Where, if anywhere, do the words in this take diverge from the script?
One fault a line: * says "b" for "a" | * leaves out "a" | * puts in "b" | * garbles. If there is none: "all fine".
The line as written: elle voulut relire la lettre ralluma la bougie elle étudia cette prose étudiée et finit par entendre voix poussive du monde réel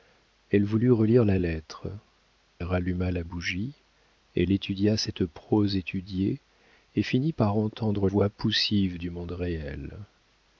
all fine